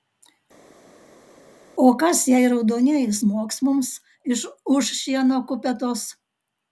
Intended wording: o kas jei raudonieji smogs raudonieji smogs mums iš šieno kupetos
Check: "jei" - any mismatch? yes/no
no